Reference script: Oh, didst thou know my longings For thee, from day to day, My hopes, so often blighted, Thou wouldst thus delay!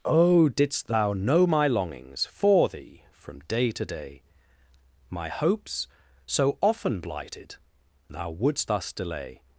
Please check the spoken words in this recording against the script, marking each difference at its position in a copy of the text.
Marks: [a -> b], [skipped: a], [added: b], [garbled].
Oh, didst thou know my longings For thee, from day to day, My hopes, so often blighted, Thou wouldst thus delay!